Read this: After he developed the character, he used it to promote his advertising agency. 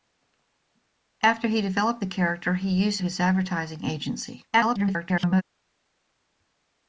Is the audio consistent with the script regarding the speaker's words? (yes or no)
no